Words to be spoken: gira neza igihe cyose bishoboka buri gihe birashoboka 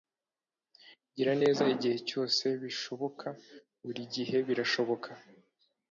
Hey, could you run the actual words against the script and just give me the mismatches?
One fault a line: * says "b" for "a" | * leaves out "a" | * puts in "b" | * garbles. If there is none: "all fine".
all fine